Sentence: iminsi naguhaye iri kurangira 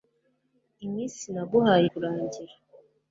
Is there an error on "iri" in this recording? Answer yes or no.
yes